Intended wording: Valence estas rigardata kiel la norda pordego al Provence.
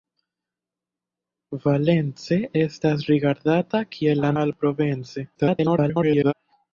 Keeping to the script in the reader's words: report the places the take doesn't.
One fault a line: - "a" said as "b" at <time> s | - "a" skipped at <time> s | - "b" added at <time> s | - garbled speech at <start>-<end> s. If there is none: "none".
- "norda pordego" skipped at 4.3 s
- garbled speech at 5.4-6.3 s